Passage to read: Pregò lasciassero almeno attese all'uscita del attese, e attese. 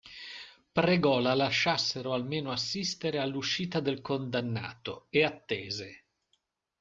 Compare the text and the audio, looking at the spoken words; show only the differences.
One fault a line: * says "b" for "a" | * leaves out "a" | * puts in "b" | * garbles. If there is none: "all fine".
* puts in "la"
* says "assistere" for "attese"
* says "condannato" for "attese"